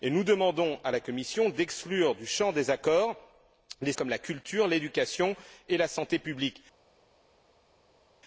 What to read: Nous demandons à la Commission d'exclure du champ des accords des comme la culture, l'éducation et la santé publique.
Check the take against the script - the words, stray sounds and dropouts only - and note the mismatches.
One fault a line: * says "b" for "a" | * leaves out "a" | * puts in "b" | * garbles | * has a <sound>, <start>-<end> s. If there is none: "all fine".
all fine